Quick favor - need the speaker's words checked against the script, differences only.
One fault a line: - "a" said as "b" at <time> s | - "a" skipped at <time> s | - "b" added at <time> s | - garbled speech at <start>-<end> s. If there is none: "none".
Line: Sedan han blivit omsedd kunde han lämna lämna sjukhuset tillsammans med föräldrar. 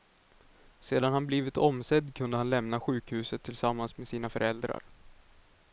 - "lämna" skipped at 2.8 s
- "sina" added at 4.1 s